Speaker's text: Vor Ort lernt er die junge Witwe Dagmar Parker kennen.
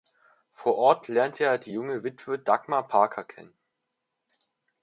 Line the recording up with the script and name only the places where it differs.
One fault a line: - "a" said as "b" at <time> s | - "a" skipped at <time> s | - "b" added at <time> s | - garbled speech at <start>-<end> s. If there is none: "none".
none